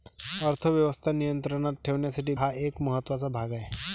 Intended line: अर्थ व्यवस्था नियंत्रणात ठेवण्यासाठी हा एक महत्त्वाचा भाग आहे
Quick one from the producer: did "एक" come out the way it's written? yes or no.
yes